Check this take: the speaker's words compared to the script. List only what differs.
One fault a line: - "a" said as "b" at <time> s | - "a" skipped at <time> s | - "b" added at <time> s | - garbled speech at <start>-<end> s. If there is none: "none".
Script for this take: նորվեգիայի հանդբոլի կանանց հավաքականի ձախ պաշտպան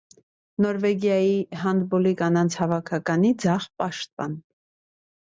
none